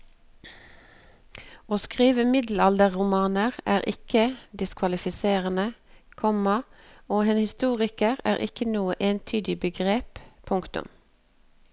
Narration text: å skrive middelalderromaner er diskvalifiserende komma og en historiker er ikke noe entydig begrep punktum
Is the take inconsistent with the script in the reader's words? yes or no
yes